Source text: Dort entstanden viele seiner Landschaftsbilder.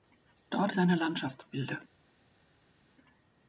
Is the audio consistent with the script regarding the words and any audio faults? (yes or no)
no